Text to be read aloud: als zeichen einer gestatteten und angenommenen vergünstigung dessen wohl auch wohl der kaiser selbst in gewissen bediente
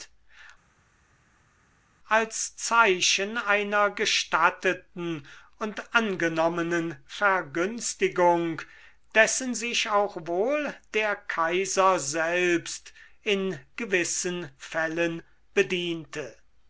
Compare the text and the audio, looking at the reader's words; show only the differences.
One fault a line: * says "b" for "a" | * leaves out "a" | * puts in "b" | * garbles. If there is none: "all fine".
* says "sich" for "wohl"
* puts in "fällen"